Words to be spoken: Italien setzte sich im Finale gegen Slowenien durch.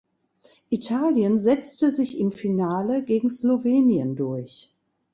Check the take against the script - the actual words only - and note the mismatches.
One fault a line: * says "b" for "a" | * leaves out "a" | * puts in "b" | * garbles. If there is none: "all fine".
all fine